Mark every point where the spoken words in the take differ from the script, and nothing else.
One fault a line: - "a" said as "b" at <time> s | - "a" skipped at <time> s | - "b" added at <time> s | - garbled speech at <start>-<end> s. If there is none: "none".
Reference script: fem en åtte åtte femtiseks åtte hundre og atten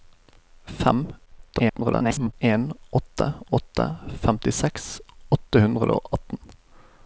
- garbled speech at 1.3-2.3 s